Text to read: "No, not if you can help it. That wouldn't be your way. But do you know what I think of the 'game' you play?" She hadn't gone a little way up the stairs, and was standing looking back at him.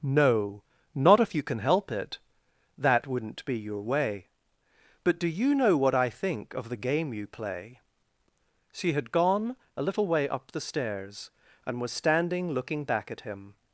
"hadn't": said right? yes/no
no